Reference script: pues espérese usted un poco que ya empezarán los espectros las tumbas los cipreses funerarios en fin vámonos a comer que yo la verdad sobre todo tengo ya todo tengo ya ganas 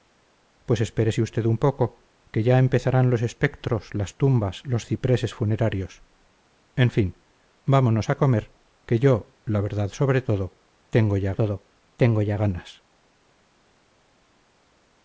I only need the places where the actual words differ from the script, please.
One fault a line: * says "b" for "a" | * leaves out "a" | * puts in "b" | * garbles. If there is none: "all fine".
all fine